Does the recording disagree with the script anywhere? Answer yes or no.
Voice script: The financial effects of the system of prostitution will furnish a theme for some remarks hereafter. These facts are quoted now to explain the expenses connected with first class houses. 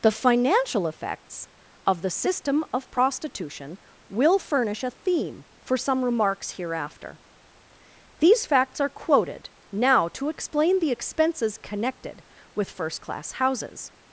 no